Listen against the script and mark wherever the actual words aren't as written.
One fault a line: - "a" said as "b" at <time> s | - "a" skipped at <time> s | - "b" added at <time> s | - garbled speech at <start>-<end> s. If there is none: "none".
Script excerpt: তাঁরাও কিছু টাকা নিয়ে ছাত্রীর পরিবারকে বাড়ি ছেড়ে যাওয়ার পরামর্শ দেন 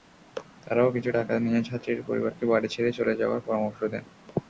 - "চলে" added at 3.0 s